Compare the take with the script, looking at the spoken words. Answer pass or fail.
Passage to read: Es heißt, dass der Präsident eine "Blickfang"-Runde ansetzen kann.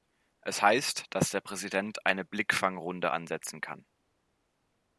pass